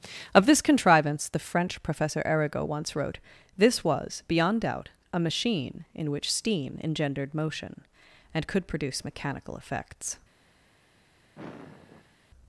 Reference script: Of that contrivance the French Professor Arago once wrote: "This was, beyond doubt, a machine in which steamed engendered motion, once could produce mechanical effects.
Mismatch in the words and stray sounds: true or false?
true